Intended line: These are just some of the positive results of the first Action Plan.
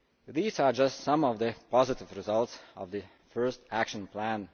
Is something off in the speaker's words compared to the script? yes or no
no